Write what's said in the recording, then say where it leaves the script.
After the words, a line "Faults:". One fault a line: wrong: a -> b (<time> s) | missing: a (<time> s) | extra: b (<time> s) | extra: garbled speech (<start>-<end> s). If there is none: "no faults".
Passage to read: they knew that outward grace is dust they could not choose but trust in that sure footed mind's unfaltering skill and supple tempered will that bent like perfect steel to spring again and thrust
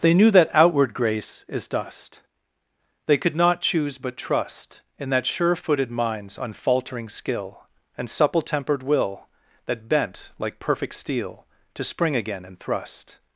they knew that outward grace is dust they could not choose but trust in that sure footed mind's unfaltering skill and supple tempered will that bent like perfect steel to spring again and thrust
Faults:
no faults